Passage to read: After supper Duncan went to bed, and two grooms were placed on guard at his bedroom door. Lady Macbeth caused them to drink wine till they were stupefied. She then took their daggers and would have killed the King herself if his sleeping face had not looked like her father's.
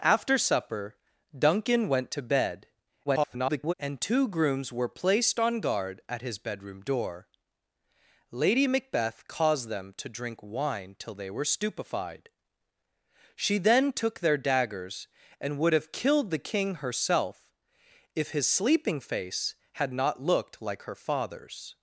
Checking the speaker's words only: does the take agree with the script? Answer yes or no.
no